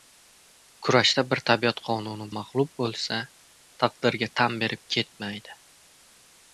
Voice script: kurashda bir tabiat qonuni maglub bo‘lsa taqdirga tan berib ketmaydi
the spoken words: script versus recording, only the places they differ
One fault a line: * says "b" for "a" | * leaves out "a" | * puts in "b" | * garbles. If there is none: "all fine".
all fine